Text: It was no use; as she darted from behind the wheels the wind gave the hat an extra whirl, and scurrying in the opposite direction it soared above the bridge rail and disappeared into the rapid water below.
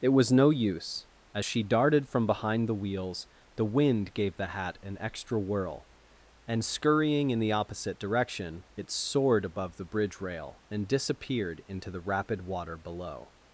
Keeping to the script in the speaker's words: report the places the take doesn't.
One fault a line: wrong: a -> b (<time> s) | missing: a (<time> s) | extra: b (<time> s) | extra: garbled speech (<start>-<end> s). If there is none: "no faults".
no faults